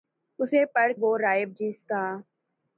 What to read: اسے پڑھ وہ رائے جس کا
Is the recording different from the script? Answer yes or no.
no